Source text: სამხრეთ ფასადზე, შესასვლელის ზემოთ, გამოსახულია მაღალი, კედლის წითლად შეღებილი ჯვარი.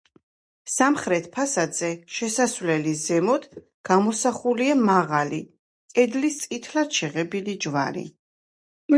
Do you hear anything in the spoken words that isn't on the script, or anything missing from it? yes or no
no